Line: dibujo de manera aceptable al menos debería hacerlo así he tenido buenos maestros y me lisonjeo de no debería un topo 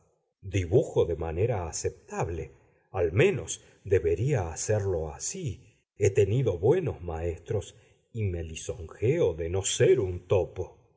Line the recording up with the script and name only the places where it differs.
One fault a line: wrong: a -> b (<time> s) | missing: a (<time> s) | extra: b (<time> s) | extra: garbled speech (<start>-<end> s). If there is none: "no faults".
wrong: debería -> ser (9.6 s)